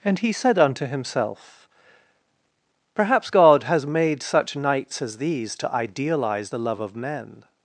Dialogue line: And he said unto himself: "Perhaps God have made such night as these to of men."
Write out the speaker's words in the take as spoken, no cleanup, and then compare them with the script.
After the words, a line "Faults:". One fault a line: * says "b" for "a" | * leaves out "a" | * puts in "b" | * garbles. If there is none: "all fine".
And he said unto himself: "Perhaps God has made such nights as these to idealize the love of men."
Faults:
* says "has" for "have"
* says "nights" for "night"
* puts in "idealize the love"